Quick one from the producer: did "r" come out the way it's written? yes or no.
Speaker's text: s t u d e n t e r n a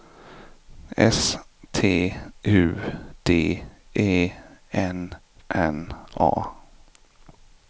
no